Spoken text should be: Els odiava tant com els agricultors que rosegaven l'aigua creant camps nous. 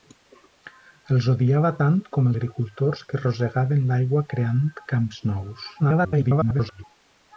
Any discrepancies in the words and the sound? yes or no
yes